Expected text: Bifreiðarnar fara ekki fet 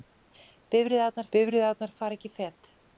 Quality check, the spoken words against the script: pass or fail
fail